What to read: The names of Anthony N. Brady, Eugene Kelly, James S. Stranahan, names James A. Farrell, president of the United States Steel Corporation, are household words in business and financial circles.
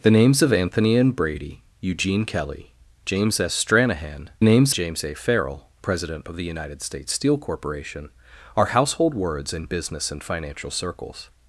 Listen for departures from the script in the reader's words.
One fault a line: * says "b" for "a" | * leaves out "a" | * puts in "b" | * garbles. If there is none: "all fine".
all fine